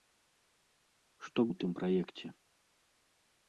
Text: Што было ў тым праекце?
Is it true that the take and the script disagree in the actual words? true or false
true